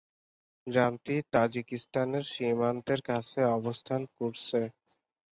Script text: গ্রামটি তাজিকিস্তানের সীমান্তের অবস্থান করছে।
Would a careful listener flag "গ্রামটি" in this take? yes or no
no